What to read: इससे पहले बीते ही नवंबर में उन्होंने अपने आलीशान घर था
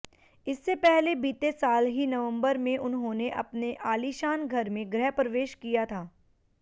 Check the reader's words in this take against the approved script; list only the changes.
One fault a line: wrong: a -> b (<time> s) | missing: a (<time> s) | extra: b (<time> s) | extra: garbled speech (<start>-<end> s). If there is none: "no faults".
extra: साल (1.5 s)
extra: में गृहप्रवेश किया (4.7 s)